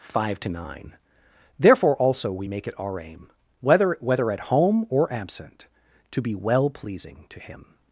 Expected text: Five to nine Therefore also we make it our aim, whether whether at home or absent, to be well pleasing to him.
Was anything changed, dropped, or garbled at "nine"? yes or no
no